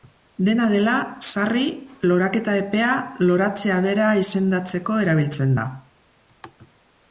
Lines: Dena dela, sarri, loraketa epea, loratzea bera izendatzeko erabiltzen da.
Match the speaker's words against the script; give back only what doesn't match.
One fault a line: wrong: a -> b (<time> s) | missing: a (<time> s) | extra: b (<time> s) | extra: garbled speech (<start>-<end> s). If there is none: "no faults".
no faults